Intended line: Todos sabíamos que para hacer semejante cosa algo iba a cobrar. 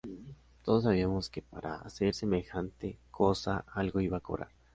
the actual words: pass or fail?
pass